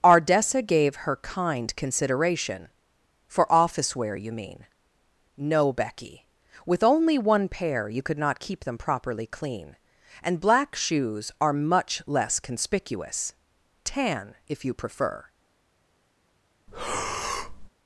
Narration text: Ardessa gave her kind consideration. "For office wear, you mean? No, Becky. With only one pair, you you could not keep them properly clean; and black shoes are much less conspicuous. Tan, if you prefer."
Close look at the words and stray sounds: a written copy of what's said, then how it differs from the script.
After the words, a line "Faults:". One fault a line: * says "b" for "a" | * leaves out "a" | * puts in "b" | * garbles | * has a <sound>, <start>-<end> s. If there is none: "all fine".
Ardessa gave her kind consideration. "For office wear, you mean? No, Becky. With only one pair, you could not keep them properly clean; and black shoes are much less conspicuous. Tan, if you prefer."
Faults:
* leaves out "you"
* has a breath, 16.7-17.7 s